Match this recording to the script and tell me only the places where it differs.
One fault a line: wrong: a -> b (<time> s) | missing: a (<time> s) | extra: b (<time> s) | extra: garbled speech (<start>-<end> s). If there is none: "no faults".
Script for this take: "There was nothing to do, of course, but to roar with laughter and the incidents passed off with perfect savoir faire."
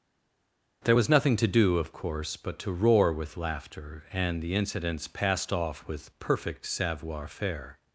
no faults